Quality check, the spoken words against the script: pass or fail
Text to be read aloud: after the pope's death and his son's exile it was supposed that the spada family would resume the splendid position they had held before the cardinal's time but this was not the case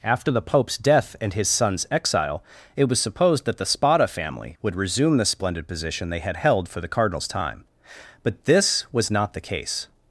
fail